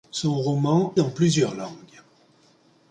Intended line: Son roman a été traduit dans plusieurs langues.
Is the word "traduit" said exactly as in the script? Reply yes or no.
no